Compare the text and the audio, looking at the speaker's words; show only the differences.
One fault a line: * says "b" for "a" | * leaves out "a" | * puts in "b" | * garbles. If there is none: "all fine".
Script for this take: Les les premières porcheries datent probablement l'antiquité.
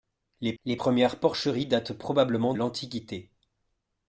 all fine